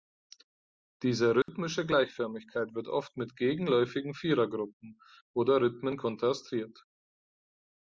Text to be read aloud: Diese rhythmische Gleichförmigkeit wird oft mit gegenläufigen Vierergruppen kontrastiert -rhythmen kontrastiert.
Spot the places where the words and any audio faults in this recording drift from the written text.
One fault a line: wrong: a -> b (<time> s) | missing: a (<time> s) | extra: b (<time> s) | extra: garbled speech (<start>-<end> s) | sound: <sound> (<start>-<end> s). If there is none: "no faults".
sound: dropout (1.4-1.5 s)
wrong: kontrastiert -> oder (5.3 s)